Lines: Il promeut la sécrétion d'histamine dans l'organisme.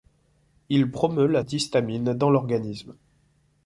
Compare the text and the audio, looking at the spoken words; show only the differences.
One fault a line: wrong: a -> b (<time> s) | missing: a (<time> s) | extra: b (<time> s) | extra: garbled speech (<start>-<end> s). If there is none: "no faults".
missing: sécrétion (1.4 s)